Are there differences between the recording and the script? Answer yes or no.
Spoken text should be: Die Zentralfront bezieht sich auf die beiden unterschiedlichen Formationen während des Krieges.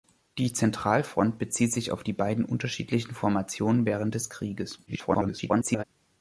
yes